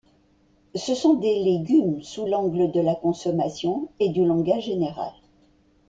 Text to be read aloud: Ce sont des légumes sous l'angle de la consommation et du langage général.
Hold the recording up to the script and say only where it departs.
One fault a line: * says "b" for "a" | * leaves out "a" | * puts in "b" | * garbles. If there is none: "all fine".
all fine